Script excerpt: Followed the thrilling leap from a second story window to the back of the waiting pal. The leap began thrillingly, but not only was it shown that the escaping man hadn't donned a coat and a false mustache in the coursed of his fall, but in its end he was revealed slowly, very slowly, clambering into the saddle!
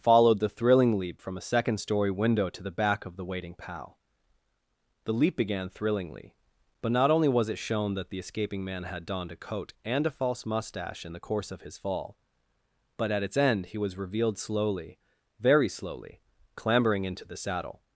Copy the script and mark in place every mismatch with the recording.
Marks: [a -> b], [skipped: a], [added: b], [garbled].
Followed the thrilling leap from a second story window to the back of the waiting pal. The leap began thrillingly, but not only was it shown that the escaping man [hadn't -> had] donned a coat and a false mustache in the [coursed -> course] of his fall, but [in -> at] its end he was revealed slowly, very slowly, clambering into the saddle!